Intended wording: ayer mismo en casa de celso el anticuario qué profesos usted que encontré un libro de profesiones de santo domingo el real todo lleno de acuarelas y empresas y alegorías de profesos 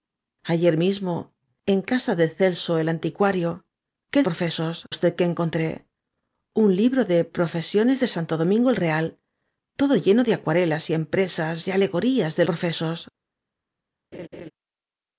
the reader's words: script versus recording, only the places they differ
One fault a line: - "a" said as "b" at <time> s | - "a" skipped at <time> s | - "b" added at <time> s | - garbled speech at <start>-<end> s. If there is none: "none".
none